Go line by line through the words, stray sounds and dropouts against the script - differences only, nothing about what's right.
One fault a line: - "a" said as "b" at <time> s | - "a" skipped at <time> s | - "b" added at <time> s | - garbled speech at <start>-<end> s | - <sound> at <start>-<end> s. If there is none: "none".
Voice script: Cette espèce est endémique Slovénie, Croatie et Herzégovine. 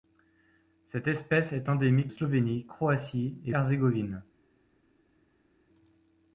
none